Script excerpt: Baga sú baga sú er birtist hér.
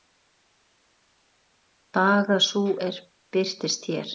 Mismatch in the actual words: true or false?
true